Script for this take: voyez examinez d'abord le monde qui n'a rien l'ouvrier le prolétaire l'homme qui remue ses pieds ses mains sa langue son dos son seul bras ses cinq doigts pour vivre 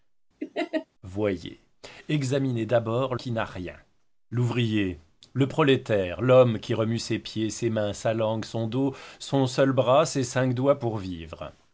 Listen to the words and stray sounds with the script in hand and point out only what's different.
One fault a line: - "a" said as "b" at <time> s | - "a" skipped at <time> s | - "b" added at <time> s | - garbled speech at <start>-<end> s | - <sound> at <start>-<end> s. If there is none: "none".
- laugh at 0.4-0.9 s
- "le monde" skipped at 3.1 s